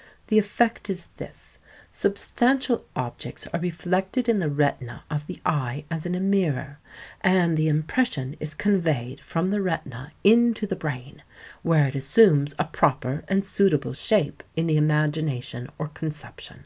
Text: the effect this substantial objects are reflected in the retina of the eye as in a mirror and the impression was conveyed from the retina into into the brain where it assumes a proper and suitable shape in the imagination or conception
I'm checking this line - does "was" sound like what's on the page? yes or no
no